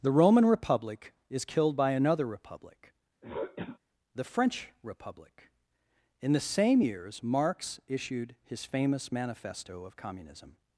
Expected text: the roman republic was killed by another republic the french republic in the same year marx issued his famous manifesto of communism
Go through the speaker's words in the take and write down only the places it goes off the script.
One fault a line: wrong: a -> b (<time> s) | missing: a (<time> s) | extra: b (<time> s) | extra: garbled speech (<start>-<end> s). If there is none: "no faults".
wrong: was -> is (1.3 s)
wrong: year -> years (6.8 s)